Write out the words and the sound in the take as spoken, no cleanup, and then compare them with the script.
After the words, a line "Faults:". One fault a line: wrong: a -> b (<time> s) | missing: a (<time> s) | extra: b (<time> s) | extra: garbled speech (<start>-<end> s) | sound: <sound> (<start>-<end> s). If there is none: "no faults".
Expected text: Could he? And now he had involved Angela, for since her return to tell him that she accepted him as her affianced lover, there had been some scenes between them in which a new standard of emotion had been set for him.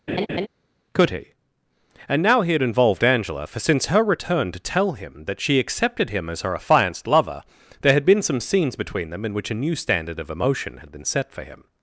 Could he? And now he had involved Angela, for since her return to tell him that she accepted him as her affianced lover, there had been some scenes between them in which a new standard of emotion had been set for him.
Faults:
sound: laugh (0.1-0.5 s)